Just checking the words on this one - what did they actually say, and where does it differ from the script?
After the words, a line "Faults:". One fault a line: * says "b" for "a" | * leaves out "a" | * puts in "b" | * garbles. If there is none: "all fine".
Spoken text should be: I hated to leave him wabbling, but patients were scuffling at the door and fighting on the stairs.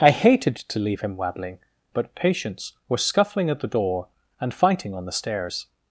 I hated to leave him wabbling, but patients were scuffling at the door and fighting on the stairs.
Faults:
all fine